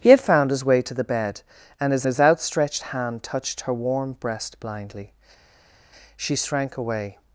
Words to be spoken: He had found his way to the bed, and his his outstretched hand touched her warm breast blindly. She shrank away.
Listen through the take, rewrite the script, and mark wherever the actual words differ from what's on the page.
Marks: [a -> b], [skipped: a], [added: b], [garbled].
He had found his way to the bed, and his his outstretched hand touched her warm breast blindly. She shrank away.